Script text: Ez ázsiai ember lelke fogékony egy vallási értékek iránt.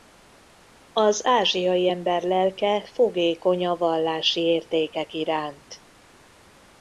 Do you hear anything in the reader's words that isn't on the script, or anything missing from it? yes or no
yes